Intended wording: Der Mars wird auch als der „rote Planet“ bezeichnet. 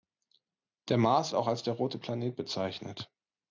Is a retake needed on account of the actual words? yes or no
yes